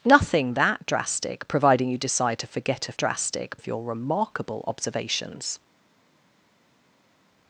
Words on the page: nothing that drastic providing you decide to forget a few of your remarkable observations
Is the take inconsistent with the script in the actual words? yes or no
yes